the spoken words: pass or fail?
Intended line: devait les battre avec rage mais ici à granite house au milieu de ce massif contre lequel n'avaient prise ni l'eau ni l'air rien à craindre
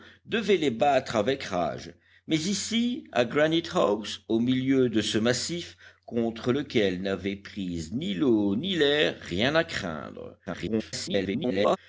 fail